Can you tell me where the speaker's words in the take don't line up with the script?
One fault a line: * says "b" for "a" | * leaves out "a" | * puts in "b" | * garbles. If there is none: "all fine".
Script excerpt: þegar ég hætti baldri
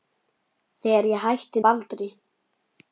all fine